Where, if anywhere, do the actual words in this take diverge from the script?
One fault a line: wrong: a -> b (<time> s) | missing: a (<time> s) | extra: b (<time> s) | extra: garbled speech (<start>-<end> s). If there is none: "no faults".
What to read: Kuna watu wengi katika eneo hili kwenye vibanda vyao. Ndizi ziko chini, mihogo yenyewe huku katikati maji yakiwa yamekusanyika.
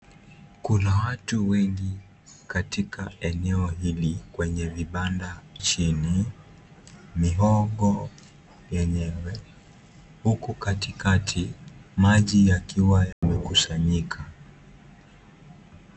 missing: vyao Ndizi ziko (5.4 s)